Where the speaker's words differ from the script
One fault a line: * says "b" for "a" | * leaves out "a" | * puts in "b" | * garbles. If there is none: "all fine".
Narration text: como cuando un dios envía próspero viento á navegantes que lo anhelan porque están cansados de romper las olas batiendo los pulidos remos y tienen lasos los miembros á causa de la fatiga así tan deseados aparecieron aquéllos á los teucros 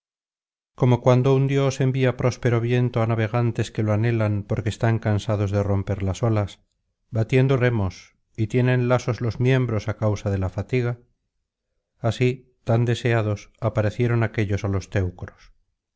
* leaves out "los pulidos"